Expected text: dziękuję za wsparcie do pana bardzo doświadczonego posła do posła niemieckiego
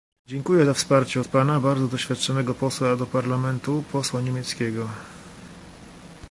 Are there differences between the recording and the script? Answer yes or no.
yes